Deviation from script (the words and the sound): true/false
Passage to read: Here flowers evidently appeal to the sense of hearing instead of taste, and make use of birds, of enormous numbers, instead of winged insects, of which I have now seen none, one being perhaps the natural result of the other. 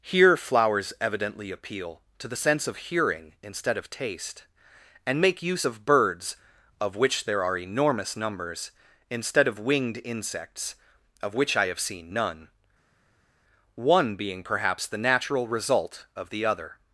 true